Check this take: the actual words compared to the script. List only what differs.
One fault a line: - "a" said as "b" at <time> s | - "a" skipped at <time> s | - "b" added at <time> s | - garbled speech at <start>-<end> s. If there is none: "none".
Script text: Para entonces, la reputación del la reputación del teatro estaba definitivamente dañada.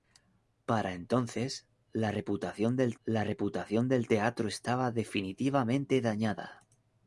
none